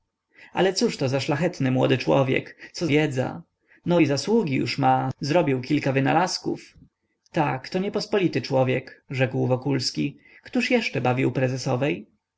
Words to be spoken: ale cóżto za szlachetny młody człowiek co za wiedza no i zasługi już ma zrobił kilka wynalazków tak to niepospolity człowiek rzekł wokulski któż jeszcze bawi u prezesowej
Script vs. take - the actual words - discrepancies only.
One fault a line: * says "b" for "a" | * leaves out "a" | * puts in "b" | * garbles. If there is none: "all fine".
* leaves out "za"